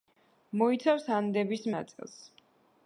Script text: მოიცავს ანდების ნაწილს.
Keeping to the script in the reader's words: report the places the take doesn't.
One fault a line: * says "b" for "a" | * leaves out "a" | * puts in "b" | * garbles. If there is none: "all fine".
all fine